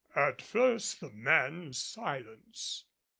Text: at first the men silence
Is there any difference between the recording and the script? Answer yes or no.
no